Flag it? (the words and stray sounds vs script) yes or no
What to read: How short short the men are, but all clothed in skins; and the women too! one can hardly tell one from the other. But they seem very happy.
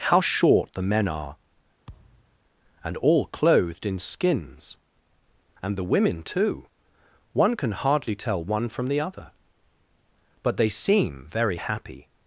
yes